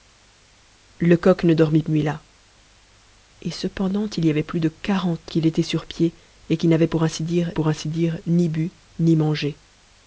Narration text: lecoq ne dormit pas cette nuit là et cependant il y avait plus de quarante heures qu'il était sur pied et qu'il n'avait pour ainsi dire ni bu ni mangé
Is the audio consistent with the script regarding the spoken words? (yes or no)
no